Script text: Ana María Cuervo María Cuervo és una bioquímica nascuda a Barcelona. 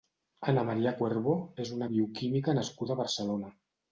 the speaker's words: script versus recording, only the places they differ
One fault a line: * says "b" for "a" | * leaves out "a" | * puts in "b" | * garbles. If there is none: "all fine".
* leaves out "María Cuervo"